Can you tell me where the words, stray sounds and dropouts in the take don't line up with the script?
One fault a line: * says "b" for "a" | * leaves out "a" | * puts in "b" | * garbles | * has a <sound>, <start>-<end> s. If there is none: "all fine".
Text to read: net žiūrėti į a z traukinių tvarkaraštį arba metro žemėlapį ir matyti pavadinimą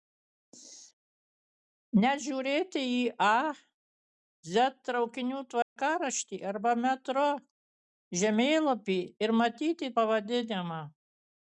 * has a dropout, 5.6-5.8 s